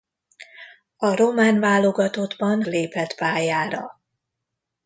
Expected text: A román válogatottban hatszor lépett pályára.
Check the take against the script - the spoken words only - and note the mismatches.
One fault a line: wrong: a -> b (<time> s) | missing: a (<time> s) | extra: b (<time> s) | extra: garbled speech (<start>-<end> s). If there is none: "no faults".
missing: hatszor (2.6 s)